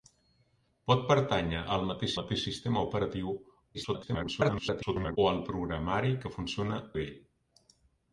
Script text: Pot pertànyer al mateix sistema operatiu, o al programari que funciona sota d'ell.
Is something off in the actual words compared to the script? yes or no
yes